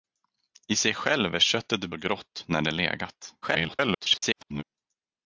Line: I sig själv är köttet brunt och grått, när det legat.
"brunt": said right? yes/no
no